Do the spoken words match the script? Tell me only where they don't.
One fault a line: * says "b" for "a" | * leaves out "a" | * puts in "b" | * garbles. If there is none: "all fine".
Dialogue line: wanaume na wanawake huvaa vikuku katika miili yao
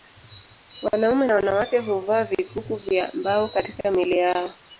* puts in "vya mbao"